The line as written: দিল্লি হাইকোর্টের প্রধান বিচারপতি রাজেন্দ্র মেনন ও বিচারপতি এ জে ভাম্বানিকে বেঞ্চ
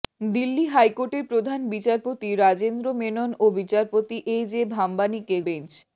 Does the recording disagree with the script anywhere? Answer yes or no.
no